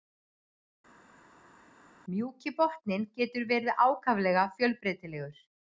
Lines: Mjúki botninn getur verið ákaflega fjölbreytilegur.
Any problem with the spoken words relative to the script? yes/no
no